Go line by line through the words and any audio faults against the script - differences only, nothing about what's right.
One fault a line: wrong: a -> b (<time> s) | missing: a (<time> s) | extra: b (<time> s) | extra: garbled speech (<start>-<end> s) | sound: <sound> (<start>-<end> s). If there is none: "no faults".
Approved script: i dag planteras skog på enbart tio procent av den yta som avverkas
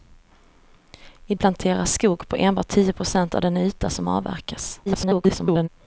missing: dag (1.4 s)
extra: garbled speech (4.9-5.7 s)